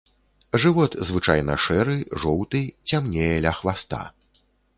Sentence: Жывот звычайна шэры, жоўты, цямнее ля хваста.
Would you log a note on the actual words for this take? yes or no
no